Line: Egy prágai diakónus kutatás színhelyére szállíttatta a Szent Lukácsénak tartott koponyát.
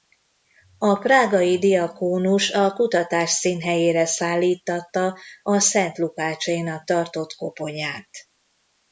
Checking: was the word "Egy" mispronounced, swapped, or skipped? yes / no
yes